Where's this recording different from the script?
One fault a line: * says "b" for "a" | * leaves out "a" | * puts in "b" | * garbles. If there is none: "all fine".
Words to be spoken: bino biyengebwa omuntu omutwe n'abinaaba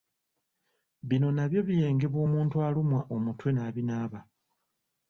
* puts in "nabyo"
* puts in "alumwa"